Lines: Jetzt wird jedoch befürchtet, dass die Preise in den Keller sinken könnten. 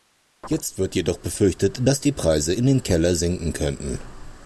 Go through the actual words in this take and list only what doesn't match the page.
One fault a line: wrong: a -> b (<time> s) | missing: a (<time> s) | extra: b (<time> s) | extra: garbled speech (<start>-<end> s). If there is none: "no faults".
no faults